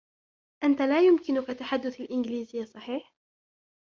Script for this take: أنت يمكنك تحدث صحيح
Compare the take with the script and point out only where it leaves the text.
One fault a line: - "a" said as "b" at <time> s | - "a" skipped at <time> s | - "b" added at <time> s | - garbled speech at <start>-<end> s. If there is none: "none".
- "لا" added at 0.8 s
- "الإنجليزية" added at 2.0 s